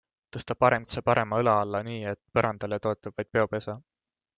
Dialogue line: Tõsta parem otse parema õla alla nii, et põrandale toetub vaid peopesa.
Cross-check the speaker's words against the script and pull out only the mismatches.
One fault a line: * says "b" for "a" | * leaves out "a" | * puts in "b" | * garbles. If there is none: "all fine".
all fine